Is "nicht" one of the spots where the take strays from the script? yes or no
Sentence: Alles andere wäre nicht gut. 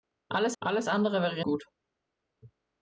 yes